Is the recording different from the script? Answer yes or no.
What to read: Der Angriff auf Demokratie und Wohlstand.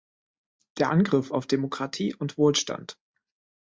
no